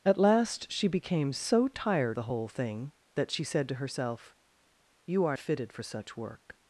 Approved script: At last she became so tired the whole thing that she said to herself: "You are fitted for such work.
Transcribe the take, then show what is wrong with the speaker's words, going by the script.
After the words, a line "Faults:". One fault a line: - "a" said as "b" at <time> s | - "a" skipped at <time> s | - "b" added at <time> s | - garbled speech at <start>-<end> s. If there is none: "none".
At last she became so tired the whole thing that she said to herself: "You are fitted for such work.
Faults:
none